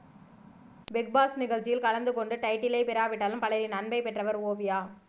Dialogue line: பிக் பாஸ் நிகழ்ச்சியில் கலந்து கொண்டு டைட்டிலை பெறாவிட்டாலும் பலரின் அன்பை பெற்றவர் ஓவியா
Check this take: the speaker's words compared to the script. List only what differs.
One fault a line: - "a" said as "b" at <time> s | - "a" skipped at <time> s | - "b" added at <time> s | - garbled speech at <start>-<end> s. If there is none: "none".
none